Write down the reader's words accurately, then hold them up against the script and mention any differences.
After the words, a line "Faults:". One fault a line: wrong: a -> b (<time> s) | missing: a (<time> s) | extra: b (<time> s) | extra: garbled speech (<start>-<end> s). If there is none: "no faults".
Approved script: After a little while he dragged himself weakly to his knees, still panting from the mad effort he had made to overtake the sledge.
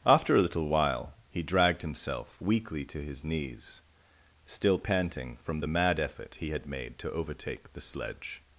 After a little while he dragged himself weakly to his knees, still panting from the mad effort he had made to overtake the sledge.
Faults:
no faults